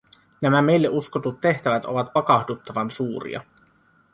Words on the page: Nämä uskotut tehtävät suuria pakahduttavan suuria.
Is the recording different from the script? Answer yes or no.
yes